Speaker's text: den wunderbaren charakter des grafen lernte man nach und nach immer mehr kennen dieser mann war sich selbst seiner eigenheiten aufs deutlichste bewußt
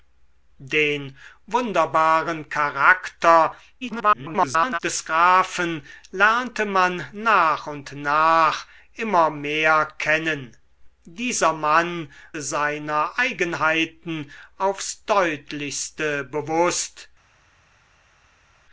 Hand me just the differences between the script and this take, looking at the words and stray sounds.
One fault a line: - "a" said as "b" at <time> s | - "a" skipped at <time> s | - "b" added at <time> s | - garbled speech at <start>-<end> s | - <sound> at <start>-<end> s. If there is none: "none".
- garbled speech at 3.8-4.8 s
- "war sich selbst" skipped at 12.1 s